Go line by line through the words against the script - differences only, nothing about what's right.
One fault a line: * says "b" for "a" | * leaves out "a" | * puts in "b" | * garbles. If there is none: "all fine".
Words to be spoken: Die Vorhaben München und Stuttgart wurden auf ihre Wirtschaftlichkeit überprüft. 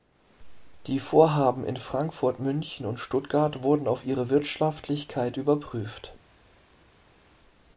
* puts in "in Frankfurt"